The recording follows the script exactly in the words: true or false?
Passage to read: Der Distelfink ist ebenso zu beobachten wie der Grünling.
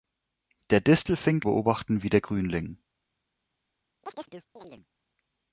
false